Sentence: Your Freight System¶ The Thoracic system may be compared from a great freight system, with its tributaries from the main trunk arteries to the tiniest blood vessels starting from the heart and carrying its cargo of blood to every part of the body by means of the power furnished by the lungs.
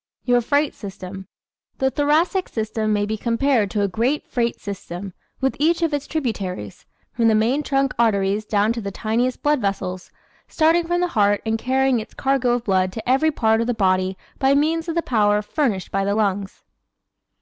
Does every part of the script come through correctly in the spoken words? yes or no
no